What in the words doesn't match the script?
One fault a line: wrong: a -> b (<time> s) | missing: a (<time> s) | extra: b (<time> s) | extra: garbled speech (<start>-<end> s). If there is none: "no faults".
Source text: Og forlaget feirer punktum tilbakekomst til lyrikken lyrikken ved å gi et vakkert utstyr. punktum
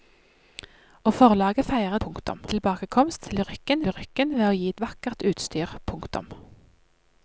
no faults